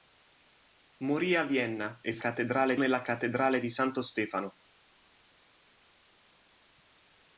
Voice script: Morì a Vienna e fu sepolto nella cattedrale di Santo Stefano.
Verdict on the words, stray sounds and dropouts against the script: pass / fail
fail